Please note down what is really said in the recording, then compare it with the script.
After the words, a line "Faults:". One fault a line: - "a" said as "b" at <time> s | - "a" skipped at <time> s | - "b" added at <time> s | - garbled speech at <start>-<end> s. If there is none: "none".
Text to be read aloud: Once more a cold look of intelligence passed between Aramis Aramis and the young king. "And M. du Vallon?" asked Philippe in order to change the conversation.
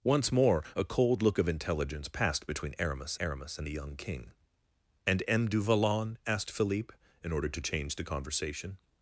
Once more a cold look of intelligence passed between Aramis Aramis and the young king. "And M. du Vallon?" asked Philippe in order to change the conversation.
Faults:
none